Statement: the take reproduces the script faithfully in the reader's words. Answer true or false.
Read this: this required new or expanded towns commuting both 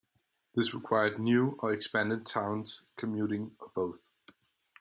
false